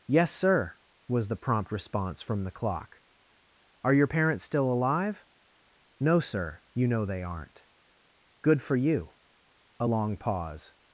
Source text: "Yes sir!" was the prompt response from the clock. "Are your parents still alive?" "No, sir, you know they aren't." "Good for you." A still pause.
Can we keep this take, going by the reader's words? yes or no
no